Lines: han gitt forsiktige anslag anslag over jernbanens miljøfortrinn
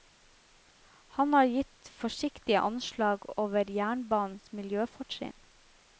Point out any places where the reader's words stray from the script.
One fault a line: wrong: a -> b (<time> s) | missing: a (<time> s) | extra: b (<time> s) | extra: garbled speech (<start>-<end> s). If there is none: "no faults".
extra: har (1.3 s)
missing: anslag (3.3 s)